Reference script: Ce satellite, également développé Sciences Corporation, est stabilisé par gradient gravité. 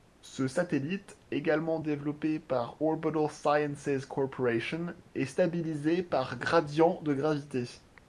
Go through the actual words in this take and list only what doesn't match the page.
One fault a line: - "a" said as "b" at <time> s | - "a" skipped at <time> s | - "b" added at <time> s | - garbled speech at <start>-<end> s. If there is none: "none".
- "par Orbital" added at 2.4 s
- "de" added at 7.0 s